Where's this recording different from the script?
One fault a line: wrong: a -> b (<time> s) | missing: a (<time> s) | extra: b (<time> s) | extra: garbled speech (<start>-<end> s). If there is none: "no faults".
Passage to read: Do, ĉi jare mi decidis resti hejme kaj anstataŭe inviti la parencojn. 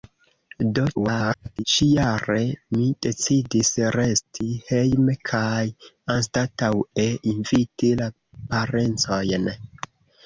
extra: garbled speech (0.9-1.6 s)